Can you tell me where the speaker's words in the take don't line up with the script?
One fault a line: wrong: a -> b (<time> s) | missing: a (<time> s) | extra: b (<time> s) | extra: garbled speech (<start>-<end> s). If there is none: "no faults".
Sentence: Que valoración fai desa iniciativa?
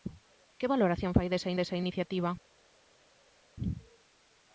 extra: desa (1.5 s)